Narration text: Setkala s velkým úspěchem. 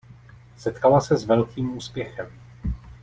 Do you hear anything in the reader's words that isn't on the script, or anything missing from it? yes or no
yes